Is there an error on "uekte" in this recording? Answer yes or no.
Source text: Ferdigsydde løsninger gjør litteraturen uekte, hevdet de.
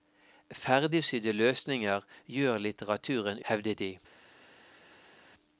yes